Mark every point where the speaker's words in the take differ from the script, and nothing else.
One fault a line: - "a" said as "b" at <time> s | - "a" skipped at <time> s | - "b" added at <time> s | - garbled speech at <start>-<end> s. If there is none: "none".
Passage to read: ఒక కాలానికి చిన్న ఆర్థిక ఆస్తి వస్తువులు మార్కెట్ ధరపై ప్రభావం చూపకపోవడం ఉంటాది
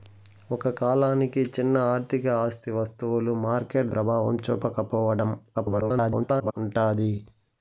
- "ధరపై" skipped at 3.9 s
- garbled speech at 5.5-6.5 s